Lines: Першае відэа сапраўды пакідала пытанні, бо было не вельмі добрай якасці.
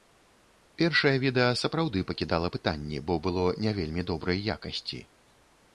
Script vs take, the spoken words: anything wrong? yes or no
no